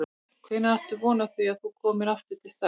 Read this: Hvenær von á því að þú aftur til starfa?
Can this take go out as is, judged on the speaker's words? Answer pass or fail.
fail